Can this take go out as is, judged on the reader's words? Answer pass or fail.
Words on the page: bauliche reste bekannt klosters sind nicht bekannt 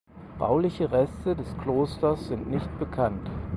fail